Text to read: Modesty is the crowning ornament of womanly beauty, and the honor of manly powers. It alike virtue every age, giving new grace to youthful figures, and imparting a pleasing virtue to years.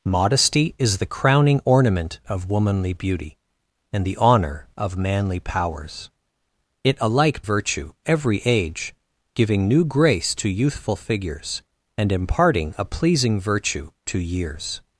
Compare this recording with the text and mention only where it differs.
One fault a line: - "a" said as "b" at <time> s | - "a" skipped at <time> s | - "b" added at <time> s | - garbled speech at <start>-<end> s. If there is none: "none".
none